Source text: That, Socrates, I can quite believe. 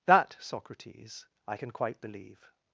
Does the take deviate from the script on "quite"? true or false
false